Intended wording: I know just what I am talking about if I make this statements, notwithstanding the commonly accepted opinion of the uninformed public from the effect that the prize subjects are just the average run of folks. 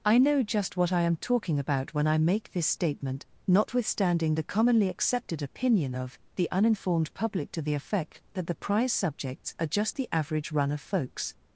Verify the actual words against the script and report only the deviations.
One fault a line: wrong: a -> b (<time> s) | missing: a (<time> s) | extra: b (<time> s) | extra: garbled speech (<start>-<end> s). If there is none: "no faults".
wrong: if -> when (1.9 s)
wrong: statements -> statement (2.6 s)
wrong: from -> to (7.5 s)